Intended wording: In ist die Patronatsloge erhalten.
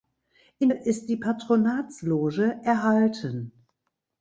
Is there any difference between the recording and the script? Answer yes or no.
no